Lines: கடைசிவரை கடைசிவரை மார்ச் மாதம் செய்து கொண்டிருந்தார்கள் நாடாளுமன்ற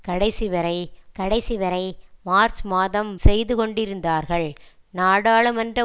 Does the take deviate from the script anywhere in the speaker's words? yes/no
no